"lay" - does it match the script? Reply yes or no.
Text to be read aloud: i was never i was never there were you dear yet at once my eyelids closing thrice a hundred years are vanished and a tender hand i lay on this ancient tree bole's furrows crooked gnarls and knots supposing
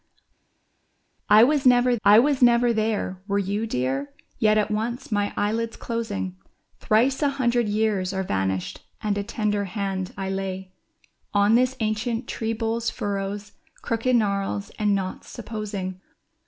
yes